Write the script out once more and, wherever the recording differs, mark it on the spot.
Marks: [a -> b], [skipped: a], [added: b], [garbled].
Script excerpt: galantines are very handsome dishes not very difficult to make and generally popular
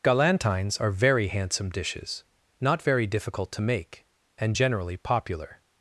galantines are very handsome dishes not very difficult to make and generally popular